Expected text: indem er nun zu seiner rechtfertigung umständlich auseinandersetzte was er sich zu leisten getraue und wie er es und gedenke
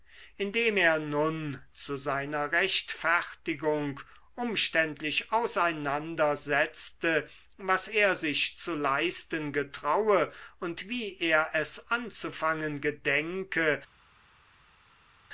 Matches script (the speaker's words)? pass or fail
fail